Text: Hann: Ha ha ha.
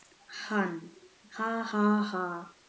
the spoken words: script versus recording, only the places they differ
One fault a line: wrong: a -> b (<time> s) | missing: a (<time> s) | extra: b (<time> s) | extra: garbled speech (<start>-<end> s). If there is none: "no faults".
no faults